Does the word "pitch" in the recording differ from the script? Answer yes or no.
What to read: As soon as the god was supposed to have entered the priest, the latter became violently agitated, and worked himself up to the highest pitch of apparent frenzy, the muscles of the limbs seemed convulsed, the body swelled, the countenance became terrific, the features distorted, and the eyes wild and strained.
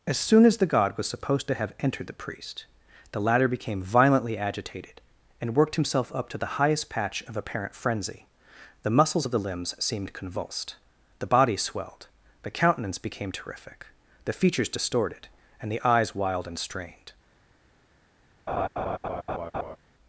yes